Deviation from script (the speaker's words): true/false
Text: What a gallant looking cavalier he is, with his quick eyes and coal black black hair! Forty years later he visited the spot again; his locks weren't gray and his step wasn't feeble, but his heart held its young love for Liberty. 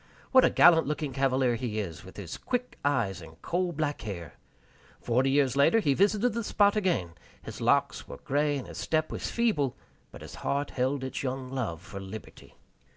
true